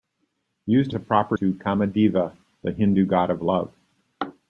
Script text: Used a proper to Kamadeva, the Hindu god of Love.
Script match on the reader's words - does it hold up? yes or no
yes